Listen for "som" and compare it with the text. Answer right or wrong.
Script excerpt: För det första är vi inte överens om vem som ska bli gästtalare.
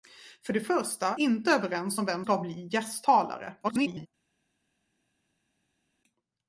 wrong